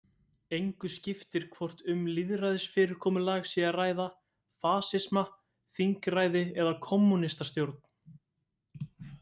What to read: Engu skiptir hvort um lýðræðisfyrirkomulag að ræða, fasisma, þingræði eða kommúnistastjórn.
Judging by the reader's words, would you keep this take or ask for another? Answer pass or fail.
fail